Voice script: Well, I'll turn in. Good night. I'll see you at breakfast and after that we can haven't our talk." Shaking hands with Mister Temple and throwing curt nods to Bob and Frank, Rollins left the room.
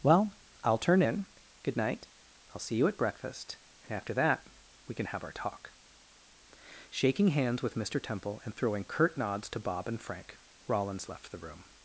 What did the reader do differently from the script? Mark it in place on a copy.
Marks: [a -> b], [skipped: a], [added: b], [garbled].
Well, I'll turn in. Good night. I'll see you at breakfast and after that we can [haven't -> have] our talk." Shaking hands with Mister Temple and throwing curt nods to Bob and Frank, Rollins left the room.